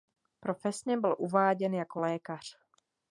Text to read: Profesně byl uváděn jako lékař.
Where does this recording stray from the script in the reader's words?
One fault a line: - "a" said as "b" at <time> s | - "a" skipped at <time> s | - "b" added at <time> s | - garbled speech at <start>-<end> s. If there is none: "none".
none